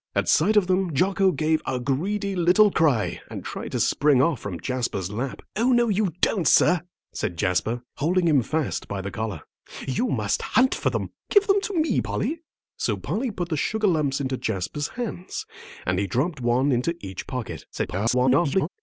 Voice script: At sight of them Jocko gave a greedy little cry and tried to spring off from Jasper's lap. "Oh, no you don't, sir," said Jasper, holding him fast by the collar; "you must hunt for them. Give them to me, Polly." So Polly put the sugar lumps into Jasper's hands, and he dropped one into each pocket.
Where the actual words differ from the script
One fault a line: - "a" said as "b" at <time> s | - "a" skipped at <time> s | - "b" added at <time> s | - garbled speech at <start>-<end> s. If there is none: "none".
- garbled speech at 17.7-18.7 s